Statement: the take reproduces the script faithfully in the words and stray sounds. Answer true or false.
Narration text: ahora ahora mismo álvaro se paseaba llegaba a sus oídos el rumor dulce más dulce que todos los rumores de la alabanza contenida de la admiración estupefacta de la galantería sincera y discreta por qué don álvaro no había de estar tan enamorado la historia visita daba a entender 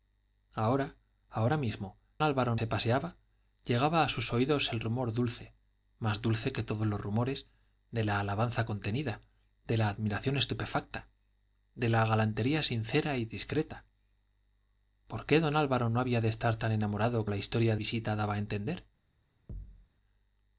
false